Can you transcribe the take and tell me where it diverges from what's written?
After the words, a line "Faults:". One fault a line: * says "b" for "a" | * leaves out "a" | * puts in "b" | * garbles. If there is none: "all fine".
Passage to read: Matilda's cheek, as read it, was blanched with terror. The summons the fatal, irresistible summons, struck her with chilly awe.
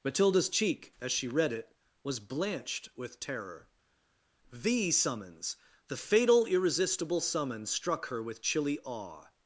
Matilda's cheek, as she read it, was blanched with terror. The summons the fatal, irresistible summons, struck her with chilly awe.
Faults:
* puts in "she"